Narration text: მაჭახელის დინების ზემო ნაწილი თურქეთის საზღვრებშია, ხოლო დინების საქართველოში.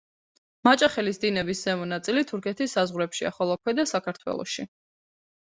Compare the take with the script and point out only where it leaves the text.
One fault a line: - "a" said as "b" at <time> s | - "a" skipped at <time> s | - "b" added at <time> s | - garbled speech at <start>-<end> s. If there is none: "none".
- "დინების" said as "ქვედა" at 3.6 s